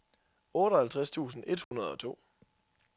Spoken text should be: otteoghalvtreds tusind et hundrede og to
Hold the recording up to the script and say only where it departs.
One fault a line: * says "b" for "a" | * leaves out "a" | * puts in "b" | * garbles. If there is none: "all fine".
all fine